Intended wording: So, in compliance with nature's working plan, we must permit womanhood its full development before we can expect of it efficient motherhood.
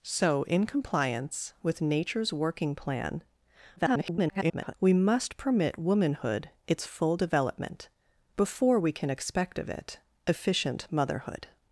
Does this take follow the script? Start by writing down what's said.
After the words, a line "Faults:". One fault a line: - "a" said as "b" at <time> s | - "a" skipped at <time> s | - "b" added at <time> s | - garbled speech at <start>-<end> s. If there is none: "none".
So, in compliance with nature's working plan, [garbled] we must permit womanhood its full development before we can expect of it efficient motherhood.
Faults:
- garbled speech at 3.8-4.7 s